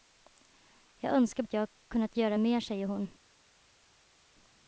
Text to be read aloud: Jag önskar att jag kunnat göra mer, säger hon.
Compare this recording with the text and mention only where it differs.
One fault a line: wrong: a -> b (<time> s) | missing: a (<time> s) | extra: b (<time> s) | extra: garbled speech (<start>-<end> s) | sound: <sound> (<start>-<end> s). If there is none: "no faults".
no faults